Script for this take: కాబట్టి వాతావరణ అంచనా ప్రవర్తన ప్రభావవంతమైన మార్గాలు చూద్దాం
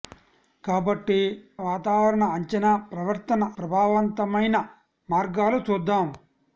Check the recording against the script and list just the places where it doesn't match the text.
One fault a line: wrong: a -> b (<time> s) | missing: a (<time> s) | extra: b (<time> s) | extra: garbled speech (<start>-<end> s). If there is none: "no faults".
no faults